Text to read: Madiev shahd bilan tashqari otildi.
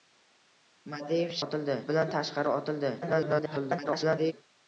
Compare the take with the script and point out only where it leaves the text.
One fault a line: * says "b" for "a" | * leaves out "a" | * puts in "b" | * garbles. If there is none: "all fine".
* says "otildi" for "shahd"
* garbles